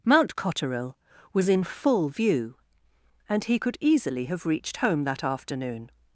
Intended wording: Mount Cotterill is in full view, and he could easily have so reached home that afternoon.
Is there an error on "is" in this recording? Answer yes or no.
yes